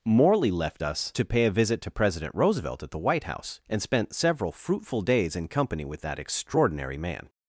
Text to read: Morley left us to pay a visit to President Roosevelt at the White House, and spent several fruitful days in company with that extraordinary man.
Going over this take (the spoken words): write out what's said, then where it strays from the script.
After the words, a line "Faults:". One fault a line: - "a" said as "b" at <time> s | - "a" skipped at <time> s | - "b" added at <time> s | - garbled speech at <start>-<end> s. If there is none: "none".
Morley left us to pay a visit to President Roosevelt at the White House, and spent several fruitful days in company with that extraordinary man.
Faults:
none